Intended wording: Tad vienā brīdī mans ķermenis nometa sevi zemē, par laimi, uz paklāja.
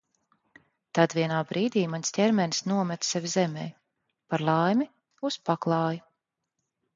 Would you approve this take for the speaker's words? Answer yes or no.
yes